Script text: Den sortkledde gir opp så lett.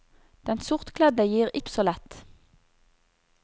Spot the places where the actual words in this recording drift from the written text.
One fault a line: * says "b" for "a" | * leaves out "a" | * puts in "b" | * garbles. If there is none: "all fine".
all fine